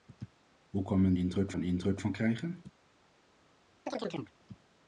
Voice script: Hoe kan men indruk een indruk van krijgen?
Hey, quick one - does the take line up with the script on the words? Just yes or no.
yes